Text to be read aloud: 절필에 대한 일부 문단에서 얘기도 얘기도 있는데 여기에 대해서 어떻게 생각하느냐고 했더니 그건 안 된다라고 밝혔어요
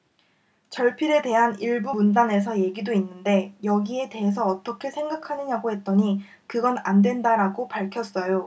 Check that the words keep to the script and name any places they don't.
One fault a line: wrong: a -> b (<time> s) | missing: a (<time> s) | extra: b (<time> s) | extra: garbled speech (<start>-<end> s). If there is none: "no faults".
missing: 얘기도 (2.9 s)